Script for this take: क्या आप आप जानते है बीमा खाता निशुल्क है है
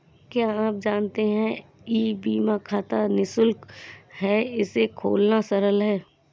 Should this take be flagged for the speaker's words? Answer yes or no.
yes